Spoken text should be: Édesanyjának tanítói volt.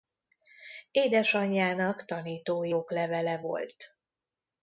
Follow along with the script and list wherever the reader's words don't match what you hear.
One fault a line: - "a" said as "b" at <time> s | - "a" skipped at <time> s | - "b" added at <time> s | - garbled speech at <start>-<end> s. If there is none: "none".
- "oklevele" added at 2.7 s